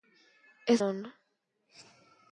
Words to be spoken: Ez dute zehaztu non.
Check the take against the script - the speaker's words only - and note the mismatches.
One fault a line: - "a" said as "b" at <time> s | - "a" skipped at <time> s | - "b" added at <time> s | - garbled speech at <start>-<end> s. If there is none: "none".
- "dute zehaztu" skipped at 0.8 s